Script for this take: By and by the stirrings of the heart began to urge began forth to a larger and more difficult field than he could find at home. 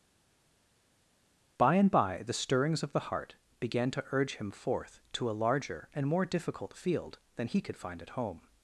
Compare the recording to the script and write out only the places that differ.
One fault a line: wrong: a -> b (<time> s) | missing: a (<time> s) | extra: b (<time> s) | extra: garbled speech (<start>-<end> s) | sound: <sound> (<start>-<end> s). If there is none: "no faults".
wrong: began -> him (4.4 s)